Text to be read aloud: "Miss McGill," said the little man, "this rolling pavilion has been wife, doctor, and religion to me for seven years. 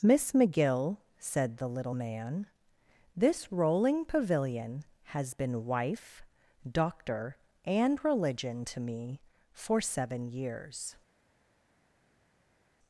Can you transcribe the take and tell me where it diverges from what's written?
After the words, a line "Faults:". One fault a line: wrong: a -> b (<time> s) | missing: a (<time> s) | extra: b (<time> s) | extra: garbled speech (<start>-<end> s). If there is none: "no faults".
"Miss McGill," said the little man, "this rolling pavilion has been wife, doctor, and religion to me for seven years.
Faults:
no faults